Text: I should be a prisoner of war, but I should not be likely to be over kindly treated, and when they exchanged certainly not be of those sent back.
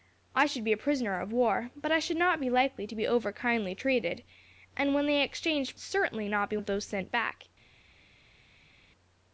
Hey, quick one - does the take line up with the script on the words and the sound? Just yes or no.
yes